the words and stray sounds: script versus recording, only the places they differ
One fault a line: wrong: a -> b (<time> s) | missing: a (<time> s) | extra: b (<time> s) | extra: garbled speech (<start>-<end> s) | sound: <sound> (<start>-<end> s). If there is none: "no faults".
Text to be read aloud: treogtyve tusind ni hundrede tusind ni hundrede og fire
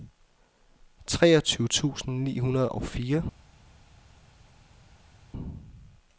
missing: tusind ni hundrede (2.7 s)